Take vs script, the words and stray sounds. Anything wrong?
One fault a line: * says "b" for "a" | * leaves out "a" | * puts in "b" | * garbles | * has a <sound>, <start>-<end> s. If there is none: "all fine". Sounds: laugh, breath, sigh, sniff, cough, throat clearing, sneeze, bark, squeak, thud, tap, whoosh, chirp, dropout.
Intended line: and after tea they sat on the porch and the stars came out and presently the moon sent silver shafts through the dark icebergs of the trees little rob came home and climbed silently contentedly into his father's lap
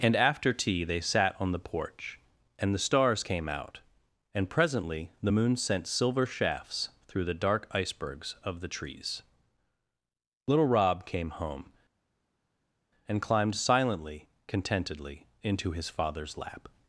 all fine